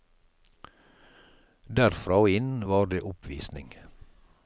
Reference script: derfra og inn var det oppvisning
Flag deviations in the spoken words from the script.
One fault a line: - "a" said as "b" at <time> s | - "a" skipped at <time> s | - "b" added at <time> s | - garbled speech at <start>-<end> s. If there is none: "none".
none